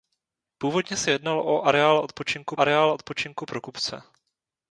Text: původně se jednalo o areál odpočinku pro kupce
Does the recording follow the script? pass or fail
fail